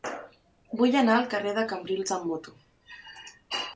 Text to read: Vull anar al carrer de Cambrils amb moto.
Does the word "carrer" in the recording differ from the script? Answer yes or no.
no